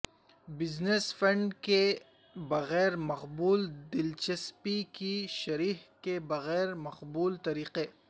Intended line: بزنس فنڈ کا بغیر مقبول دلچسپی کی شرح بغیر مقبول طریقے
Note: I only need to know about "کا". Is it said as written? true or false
false